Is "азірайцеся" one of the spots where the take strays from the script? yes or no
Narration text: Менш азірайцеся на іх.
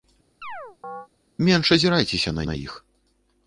no